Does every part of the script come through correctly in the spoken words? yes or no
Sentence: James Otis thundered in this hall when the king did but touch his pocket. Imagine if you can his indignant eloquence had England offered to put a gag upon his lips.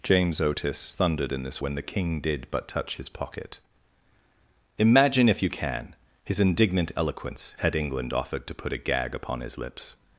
no